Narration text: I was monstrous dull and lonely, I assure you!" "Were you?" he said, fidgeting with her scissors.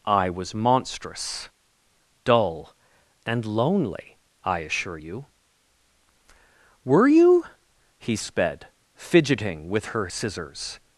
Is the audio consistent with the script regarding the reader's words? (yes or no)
no